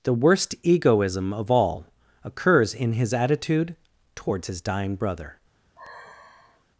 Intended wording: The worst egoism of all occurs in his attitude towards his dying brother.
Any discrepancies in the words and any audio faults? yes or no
yes